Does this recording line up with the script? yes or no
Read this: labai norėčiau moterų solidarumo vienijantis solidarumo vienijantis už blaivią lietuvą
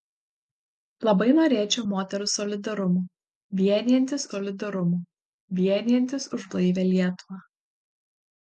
yes